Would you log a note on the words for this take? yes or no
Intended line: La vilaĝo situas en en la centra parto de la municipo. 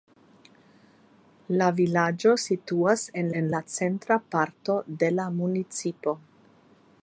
no